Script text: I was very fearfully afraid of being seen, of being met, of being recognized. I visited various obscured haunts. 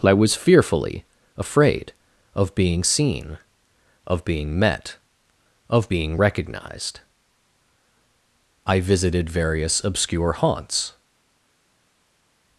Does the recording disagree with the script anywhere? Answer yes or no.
yes